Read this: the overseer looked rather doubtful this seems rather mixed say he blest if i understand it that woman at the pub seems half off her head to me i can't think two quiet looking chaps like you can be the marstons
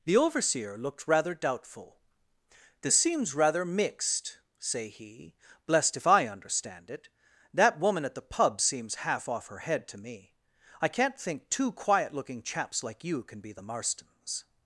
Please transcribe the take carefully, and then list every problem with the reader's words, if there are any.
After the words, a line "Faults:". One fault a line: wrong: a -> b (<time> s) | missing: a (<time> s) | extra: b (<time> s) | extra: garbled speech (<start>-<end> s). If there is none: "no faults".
the overseer looked rather doubtful this seems rather mixed say he blest if i understand it that woman at the pub seems half off her head to me i can't think two quiet looking chaps like you can be the marstons
Faults:
no faults